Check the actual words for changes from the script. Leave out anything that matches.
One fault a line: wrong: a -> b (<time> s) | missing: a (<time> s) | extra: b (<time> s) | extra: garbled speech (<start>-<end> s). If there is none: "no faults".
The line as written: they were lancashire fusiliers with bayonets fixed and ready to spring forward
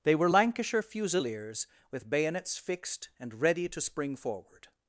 no faults